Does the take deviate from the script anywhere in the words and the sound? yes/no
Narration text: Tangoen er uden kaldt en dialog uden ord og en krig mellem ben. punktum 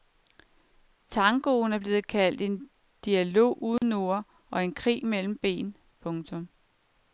yes